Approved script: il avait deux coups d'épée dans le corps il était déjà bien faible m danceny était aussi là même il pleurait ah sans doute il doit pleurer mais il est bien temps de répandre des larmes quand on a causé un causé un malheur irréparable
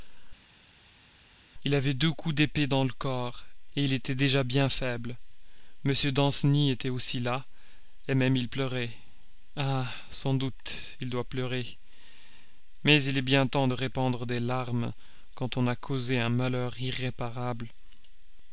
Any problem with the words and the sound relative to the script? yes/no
yes